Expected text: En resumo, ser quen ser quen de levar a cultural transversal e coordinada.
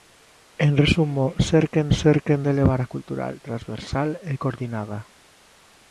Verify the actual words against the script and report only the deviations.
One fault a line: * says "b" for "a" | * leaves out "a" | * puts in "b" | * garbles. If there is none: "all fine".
all fine